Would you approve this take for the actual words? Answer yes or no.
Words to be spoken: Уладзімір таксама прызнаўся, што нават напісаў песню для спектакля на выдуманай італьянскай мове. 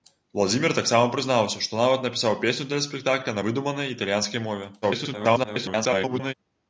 no